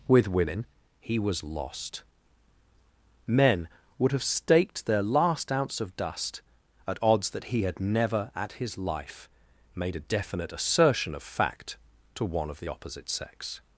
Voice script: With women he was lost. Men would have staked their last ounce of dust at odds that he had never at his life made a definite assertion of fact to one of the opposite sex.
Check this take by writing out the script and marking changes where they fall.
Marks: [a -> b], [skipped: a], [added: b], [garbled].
With women he was lost. Men would have staked their last ounce of dust at odds that he had never at his life made a definite assertion of fact to one of the opposite sex.